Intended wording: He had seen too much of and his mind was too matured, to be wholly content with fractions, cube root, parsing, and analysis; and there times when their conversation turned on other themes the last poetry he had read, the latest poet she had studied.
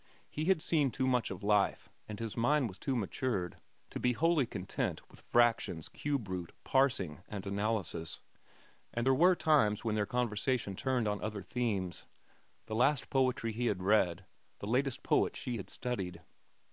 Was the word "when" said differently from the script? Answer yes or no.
no